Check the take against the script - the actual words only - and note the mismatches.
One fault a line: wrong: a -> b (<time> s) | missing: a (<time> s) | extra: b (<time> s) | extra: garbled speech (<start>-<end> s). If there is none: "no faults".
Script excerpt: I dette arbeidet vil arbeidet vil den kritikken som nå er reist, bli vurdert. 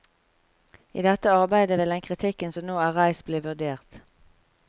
missing: arbeidet vil (1.9 s)